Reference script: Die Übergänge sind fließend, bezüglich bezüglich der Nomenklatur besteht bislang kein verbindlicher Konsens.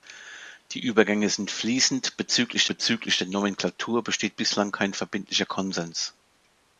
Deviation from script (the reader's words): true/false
false